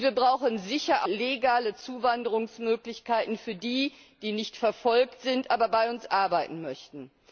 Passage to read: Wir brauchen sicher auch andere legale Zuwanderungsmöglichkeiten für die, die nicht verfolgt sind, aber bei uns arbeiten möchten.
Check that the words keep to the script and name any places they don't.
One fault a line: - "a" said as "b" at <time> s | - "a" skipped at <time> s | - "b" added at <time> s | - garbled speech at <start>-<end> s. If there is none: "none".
- "auch andere" skipped at 1.1 s